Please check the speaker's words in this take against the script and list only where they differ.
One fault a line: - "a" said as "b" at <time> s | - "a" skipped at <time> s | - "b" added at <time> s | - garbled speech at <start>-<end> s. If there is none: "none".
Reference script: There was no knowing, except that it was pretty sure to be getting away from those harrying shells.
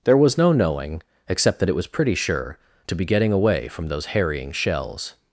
none